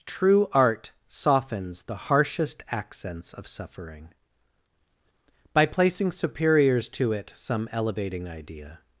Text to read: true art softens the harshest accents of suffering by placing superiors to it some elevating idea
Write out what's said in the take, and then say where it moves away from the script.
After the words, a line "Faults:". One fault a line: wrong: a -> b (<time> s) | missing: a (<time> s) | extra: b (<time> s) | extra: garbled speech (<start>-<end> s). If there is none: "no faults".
true art softens the harshest accents of suffering by placing superiors to it some elevating idea
Faults:
no faults